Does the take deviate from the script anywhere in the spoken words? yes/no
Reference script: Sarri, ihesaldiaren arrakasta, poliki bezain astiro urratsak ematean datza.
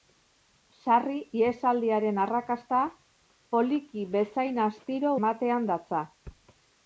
yes